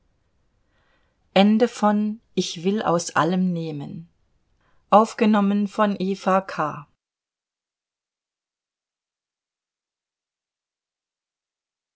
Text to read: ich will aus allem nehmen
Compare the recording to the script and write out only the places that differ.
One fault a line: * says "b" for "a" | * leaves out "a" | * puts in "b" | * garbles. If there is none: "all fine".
all fine